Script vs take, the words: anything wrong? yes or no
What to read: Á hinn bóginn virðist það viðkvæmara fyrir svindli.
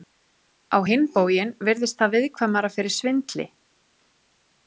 no